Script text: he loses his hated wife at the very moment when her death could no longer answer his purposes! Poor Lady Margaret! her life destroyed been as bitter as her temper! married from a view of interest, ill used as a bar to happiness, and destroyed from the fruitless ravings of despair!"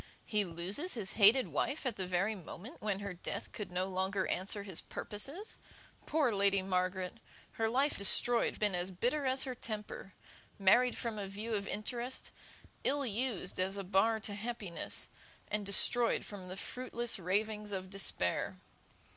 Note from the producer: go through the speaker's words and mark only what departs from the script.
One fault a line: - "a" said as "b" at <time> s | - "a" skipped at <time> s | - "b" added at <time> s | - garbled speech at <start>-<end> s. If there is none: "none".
none